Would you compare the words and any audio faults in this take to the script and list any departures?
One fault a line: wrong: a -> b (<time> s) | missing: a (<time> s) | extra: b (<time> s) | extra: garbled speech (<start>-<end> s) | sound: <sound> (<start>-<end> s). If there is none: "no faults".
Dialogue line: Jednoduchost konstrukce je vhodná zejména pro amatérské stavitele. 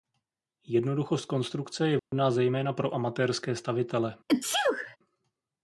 sound: dropout (2.0-2.1 s)
sound: sneeze (4.3-5.0 s)